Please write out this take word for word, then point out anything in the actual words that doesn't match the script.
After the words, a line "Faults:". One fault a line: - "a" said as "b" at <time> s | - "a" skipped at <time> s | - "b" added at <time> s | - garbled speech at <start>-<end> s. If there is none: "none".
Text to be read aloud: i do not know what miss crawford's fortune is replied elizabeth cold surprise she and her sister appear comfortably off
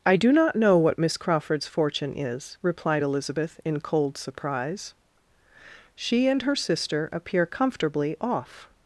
i do not know what miss crawford's fortune is replied elizabeth in cold surprise she and her sister appear comfortably off
Faults:
- "in" added at 3.6 s